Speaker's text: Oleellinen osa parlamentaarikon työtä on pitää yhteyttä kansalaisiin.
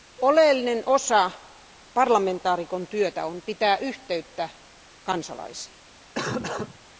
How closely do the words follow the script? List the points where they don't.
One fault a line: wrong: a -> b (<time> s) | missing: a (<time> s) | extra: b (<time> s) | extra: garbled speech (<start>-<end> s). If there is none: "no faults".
no faults